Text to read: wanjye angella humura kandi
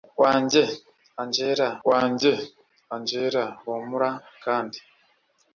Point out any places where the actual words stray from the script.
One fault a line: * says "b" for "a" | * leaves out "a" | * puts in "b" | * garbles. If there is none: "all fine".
* puts in "wanjye angella"